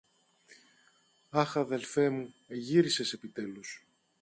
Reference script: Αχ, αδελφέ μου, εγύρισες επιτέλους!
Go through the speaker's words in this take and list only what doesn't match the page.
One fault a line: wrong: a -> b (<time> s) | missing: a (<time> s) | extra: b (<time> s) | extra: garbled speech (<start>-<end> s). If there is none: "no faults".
no faults